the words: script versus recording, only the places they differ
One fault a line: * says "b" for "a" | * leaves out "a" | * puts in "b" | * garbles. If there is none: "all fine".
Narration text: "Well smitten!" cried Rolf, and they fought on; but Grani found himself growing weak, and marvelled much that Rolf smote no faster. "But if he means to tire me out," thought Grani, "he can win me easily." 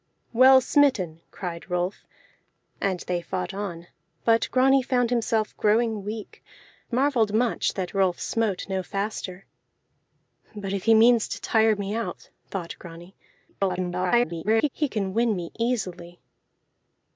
* leaves out "and"
* garbles